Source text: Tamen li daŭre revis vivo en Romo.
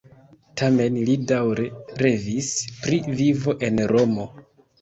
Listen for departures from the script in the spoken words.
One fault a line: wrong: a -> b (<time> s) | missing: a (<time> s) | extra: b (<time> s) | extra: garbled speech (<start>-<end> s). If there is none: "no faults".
extra: pri (2.8 s)